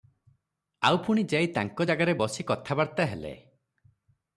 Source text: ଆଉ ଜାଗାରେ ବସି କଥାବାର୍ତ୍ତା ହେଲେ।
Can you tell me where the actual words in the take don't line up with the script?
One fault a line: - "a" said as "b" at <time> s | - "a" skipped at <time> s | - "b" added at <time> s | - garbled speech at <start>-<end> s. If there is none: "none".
- "ପୁଣି ଯାଇ ତାଙ୍କ" added at 1.1 s